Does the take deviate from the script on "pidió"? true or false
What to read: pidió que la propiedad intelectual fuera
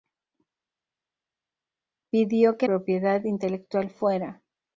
false